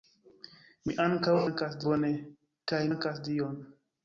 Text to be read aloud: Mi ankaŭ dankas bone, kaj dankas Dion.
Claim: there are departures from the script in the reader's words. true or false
false